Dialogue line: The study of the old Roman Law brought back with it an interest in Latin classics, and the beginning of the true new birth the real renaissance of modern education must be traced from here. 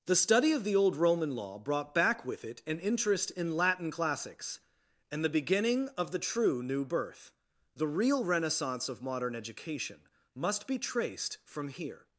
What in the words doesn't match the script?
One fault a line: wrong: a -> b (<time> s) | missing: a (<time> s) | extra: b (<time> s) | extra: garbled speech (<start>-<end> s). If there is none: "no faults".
no faults